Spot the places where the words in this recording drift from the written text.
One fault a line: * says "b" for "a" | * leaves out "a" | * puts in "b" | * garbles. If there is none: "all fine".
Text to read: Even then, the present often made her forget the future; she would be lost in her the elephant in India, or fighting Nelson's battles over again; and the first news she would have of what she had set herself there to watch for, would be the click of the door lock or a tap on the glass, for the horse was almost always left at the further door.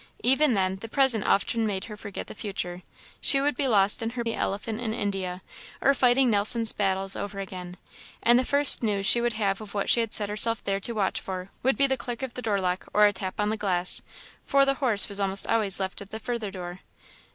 all fine